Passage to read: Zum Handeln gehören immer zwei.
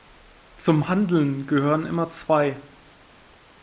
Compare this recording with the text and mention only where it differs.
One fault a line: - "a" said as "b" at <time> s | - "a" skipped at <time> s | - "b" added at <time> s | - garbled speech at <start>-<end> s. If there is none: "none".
none